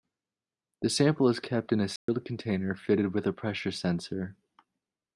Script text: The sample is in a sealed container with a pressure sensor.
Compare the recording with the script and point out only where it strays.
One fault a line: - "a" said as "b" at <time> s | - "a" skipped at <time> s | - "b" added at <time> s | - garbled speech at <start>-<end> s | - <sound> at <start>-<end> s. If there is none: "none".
- "kept" added at 1.4 s
- dropout at 2.0-2.1 s
- "fitted" added at 2.7 s